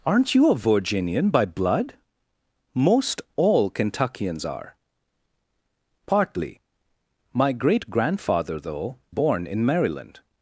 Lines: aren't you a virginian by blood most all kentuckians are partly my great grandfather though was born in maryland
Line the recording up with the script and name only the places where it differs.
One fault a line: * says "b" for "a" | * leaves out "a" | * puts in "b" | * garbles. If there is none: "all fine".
* leaves out "was"